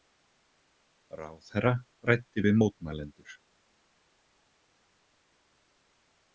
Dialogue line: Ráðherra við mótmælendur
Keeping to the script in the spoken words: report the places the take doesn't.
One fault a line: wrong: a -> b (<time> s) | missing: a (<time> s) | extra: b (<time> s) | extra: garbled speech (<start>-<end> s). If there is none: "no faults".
extra: ræddi (2.1 s)